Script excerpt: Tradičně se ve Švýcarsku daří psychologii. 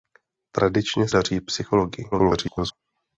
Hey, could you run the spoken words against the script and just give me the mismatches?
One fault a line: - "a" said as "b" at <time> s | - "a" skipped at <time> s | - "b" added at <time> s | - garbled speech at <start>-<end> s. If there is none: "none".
- "se ve Švýcarsku" skipped at 1.1 s
- garbled speech at 2.1-2.7 s